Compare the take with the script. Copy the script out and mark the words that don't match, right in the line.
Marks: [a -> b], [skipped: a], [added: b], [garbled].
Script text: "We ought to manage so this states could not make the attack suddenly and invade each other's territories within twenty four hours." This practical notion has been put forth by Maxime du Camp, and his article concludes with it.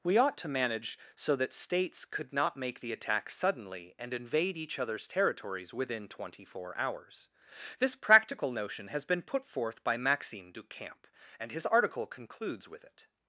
"We ought to manage so [this -> that] states could not make the attack suddenly and invade each other's territories within twenty four hours." This practical notion has been put forth by Maxime du Camp, and his article concludes with it.